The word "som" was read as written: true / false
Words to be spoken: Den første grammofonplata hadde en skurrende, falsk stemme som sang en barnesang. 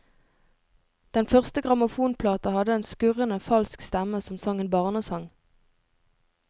true